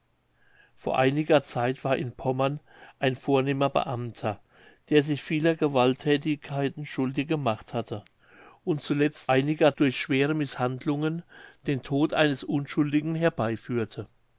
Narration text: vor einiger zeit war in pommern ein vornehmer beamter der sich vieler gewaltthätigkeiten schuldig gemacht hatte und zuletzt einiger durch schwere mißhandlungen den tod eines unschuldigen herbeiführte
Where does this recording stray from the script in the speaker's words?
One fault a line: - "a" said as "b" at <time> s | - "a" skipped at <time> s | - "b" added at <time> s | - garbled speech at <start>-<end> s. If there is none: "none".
none